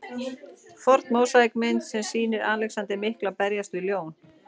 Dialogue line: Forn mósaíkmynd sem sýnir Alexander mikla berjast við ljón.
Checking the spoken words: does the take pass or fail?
pass